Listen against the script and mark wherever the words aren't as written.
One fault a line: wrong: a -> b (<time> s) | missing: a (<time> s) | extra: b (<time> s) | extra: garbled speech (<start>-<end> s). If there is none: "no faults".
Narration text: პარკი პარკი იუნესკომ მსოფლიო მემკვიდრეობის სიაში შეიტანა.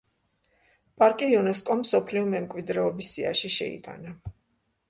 missing: პარკი (1.3 s)